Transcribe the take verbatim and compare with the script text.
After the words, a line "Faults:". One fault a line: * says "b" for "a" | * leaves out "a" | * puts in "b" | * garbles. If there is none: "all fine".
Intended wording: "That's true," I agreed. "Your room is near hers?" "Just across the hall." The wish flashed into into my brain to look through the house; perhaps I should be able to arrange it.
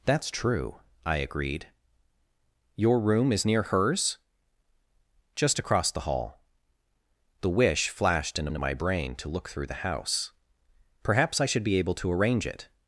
"That's true," I agreed. "Your room is near hers?" "Just across the hall." The wish flashed into into my brain to look through the house; perhaps I should be able to arrange it.
Faults:
all fine